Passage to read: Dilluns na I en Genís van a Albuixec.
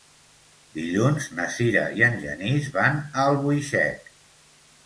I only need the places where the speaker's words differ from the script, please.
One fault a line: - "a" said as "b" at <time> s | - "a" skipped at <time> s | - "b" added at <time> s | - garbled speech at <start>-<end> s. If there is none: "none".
- "Sira" added at 1.6 s